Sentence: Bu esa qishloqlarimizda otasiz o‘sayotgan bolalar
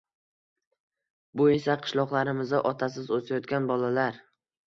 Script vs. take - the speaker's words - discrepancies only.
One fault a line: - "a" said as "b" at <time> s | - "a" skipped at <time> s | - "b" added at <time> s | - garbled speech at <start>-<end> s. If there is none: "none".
none